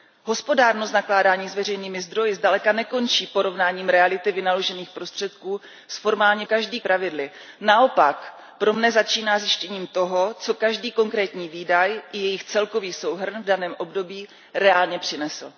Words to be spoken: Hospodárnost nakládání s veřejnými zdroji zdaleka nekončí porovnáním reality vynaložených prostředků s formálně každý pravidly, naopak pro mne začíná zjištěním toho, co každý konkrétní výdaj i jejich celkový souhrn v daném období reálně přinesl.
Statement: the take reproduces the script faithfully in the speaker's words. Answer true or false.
true